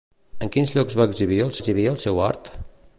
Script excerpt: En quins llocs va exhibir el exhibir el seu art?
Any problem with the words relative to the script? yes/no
no